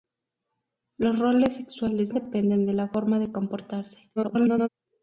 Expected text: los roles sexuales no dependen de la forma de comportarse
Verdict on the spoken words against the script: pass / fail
fail